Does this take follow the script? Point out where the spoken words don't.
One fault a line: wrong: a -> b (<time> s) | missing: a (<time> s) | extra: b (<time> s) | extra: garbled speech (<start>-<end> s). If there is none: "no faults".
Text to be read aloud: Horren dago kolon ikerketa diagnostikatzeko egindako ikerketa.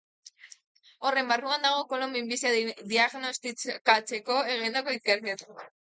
extra: barruan (1.3 s)
wrong: ikerketa -> minbizia (2.2 s)